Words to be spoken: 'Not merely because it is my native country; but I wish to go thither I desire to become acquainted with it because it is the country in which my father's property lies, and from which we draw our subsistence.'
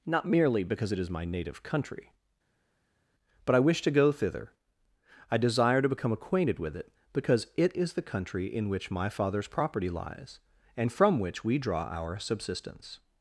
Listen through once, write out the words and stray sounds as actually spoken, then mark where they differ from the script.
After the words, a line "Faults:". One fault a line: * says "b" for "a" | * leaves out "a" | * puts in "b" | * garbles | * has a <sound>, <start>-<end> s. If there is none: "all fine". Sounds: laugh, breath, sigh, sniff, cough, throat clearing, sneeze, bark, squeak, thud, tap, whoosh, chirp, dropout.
'Not merely because it is my native country; but I wish to go thither I desire to become acquainted with it because it is the country in which my father's property lies, and from which we draw our subsistence.'
Faults:
all fine